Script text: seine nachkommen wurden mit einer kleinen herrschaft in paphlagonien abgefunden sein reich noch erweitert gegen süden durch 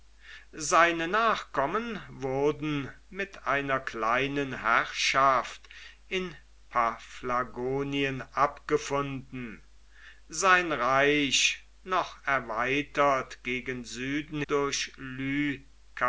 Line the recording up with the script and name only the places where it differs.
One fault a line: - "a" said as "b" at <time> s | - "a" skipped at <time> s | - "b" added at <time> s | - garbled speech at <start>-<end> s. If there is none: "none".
none